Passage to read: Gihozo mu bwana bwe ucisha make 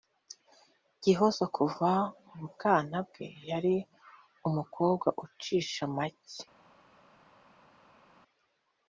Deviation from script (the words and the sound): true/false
true